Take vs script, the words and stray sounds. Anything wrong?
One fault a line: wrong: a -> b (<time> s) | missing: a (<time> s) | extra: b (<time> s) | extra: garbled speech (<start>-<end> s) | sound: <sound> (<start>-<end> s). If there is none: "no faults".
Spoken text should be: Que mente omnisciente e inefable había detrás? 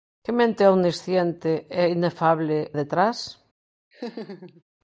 missing: había (2.7 s)
sound: laugh (3.9-4.6 s)